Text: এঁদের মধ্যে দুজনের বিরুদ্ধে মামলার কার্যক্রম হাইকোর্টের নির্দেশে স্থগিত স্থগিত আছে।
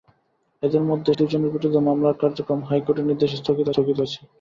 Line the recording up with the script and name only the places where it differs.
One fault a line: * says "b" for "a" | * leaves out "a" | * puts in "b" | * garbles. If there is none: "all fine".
all fine